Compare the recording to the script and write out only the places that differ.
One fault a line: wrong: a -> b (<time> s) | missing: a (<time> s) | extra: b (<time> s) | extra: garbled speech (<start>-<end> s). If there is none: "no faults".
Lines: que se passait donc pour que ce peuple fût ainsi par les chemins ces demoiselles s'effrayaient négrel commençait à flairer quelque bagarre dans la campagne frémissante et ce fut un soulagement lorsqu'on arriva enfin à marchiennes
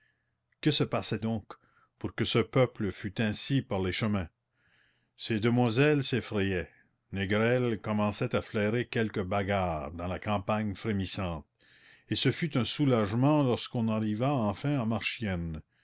no faults